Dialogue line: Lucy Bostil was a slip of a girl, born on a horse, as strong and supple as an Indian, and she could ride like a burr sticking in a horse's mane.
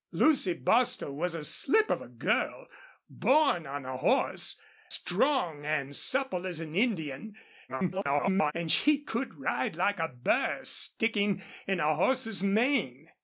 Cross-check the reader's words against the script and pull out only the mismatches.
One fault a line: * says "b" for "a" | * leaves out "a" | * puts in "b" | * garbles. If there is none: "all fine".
* leaves out "as"
* garbles